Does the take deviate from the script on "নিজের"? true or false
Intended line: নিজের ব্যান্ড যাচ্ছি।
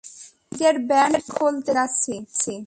false